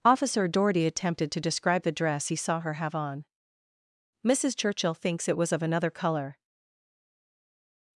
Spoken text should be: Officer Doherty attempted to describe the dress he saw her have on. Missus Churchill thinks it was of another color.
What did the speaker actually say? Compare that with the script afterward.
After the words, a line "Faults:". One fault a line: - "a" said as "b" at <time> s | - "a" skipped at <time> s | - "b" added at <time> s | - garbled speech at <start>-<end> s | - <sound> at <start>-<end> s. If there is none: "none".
Officer Doherty attempted to describe the dress he saw her have on. Missus Churchill thinks it was of another color.
Faults:
none